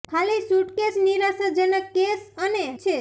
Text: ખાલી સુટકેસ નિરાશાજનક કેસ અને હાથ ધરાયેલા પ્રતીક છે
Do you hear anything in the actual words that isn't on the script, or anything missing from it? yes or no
yes